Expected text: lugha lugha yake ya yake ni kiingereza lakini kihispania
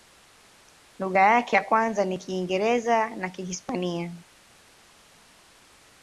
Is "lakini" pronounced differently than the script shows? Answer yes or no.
yes